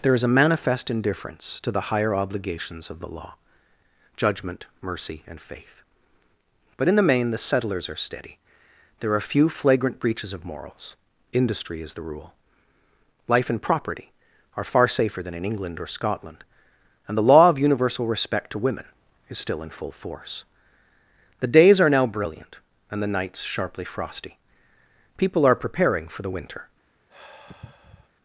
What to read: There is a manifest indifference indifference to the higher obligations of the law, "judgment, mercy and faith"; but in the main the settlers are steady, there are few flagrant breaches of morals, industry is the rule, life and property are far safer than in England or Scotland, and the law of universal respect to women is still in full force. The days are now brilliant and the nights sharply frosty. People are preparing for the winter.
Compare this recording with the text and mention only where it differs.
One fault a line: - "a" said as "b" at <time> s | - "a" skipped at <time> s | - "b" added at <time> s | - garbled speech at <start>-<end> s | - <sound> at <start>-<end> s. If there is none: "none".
- "indifference" skipped at 1.6 s
- sigh at 27.1-28.1 s